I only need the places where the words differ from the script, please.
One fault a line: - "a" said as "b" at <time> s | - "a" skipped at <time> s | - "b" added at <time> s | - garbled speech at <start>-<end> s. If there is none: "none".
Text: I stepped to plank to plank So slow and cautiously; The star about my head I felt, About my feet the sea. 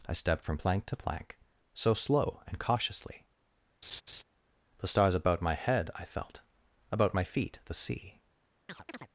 - "to" said as "from" at 0.4 s
- "star" said as "stars" at 4.9 s